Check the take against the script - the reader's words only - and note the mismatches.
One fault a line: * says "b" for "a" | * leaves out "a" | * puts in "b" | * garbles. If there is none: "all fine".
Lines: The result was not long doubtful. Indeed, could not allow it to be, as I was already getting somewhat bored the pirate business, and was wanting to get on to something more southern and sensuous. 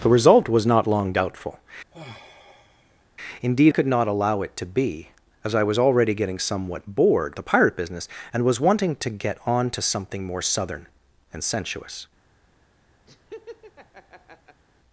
all fine